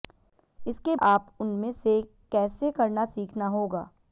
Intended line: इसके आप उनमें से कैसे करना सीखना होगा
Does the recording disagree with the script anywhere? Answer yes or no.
no